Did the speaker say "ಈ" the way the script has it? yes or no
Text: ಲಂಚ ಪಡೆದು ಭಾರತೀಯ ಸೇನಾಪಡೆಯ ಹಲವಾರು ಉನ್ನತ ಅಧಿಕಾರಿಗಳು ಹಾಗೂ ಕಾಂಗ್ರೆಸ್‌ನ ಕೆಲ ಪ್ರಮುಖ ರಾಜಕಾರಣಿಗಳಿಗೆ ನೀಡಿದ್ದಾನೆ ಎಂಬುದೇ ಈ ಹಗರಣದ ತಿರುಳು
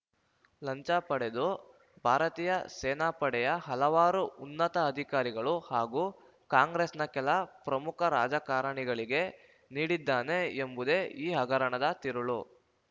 yes